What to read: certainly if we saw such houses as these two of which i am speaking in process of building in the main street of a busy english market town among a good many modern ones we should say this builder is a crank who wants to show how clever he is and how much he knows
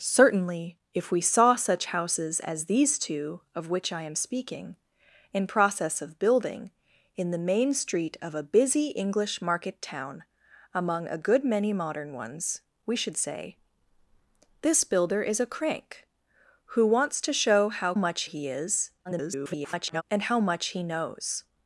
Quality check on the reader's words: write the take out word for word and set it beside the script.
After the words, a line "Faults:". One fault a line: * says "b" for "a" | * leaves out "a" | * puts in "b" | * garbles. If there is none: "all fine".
certainly if we saw such houses as these two of which i am speaking in process of building in the main street of a busy english market town among a good many modern ones we should say this builder is a crank who wants to show how much he is [garbled] and how much he knows
Faults:
* says "much" for "clever"
* garbles